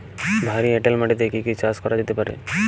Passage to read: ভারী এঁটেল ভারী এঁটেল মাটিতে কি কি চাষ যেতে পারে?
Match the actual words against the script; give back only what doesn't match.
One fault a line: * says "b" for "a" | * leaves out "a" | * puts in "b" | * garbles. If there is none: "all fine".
* leaves out "ভারী এঁটেল"
* puts in "করা"